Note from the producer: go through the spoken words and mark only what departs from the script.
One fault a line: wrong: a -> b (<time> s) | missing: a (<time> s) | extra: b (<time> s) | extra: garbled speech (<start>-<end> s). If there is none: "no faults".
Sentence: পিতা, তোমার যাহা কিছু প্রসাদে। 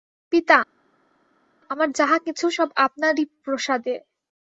wrong: তোমার -> আমার (1.7 s)
extra: সব আপনারই (2.5 s)